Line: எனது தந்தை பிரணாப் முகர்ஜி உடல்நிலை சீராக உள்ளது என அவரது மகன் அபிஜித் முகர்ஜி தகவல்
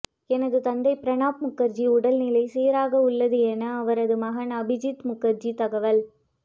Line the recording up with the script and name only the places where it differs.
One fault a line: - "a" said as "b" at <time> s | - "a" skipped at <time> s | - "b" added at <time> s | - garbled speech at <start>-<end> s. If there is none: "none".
none